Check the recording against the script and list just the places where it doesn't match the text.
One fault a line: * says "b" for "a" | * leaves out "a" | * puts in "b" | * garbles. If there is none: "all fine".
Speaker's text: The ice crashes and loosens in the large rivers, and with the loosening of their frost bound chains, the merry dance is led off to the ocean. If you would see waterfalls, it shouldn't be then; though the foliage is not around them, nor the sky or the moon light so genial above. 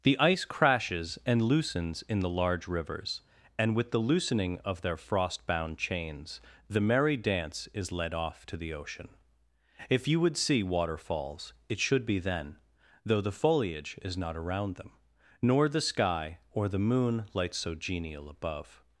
* says "should" for "shouldn't"